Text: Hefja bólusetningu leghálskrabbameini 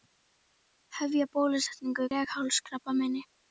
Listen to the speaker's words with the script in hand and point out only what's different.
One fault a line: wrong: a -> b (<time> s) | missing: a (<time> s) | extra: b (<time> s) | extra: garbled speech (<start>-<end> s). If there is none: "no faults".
no faults